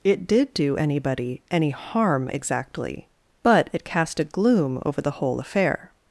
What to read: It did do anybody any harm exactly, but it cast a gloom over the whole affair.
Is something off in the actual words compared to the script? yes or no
no